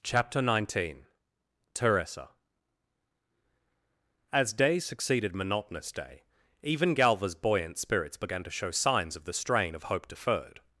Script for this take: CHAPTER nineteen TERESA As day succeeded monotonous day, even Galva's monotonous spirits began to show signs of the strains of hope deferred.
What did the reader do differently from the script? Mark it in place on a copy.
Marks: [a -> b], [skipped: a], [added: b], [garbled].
CHAPTER nineteen TERESA As day succeeded monotonous day, even Galva's [monotonous -> buoyant] spirits began to show signs of the [strains -> strain] of hope deferred.